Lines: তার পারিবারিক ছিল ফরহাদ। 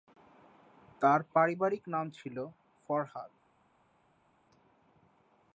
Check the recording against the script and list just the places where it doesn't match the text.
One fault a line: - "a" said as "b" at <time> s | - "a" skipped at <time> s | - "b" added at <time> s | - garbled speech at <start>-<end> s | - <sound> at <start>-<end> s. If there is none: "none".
- "নাম" added at 1.9 s